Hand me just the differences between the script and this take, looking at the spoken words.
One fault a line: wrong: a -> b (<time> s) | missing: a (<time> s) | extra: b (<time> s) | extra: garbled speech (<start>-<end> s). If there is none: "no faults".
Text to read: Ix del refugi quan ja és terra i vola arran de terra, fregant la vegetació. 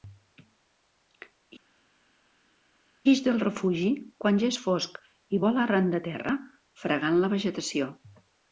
wrong: terra -> fosc (4.6 s)